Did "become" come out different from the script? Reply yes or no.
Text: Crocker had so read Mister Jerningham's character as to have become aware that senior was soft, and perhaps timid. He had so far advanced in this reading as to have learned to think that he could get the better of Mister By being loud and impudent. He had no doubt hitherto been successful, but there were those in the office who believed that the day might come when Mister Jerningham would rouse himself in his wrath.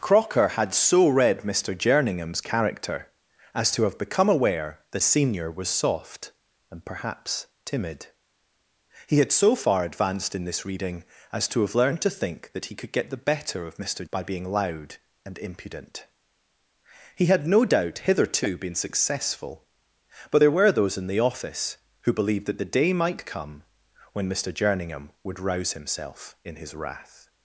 no